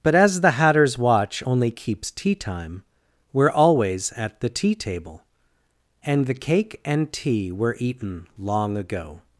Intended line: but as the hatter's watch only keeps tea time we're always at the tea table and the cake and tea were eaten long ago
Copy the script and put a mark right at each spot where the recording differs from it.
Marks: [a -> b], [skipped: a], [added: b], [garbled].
but as the hatter's watch only keeps tea time we're always at the tea table and the cake and tea were eaten long ago